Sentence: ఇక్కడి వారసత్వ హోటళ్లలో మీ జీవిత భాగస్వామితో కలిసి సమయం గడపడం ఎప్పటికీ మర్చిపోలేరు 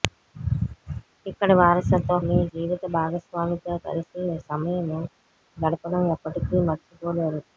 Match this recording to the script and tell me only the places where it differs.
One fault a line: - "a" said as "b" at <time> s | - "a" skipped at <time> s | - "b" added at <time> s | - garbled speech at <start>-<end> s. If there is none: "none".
- "హోటళ్లలో" skipped at 2.1 s